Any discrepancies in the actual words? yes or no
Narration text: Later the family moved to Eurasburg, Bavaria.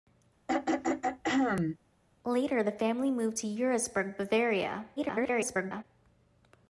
yes